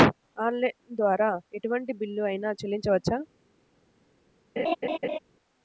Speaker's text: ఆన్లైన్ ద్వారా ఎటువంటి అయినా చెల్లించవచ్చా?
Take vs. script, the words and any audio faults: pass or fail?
fail